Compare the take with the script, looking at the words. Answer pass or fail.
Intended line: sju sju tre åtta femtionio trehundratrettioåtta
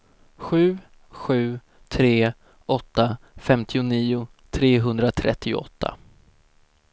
pass